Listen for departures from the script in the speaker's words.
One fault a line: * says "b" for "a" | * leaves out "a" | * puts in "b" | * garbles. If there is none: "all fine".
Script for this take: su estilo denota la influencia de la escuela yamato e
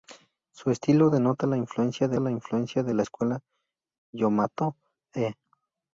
* puts in "influencia de la"